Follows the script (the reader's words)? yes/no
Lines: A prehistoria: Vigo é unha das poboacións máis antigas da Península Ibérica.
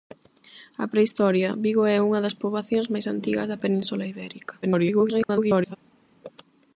no